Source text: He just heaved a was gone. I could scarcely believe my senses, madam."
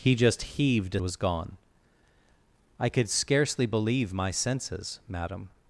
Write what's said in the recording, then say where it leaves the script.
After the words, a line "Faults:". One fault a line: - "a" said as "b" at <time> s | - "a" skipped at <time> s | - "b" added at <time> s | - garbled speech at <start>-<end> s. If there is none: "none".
He just heaved a was gone. I could scarcely believe my senses, madam."
Faults:
none